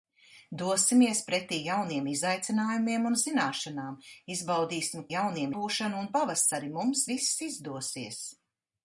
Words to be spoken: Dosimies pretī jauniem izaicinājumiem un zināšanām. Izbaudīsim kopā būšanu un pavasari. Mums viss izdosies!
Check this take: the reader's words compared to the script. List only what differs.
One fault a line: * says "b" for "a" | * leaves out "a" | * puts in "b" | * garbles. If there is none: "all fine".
* says "jauniem" for "kopā"